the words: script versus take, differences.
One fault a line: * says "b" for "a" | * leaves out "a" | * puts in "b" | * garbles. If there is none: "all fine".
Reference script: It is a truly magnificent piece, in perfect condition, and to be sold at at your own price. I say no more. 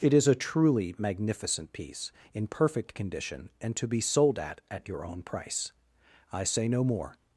all fine